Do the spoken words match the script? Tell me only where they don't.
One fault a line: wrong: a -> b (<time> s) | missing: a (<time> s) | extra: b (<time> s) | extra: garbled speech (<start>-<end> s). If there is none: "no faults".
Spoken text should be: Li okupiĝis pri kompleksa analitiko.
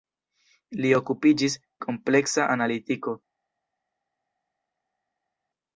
missing: pri (1.6 s)